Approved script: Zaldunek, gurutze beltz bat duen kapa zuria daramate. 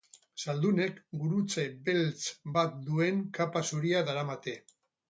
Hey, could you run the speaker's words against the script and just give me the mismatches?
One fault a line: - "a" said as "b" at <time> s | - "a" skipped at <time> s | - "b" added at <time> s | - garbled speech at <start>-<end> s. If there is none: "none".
none